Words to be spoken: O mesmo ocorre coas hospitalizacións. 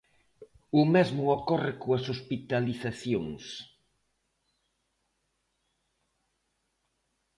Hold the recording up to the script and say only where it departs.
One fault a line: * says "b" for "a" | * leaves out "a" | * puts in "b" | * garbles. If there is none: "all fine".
all fine